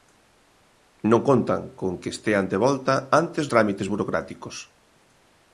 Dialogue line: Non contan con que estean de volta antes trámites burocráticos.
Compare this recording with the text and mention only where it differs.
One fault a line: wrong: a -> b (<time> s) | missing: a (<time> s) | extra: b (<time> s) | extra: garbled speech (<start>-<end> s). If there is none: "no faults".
no faults